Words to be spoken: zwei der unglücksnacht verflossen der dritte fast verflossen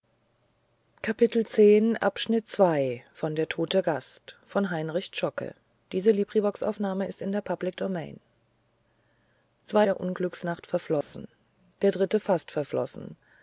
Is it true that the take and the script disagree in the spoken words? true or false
false